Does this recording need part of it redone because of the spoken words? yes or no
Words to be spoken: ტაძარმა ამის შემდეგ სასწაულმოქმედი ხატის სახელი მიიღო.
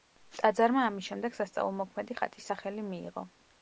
no